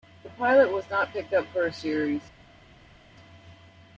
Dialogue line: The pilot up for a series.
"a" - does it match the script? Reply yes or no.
yes